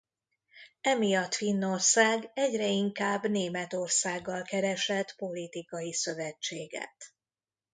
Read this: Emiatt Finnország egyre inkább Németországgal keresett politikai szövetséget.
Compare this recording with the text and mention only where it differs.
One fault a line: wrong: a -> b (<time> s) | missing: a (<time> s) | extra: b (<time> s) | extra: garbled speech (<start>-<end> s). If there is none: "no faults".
no faults